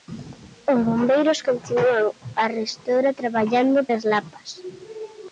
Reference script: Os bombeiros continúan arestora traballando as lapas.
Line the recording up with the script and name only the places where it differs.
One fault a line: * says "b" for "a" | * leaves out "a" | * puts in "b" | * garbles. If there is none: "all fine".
all fine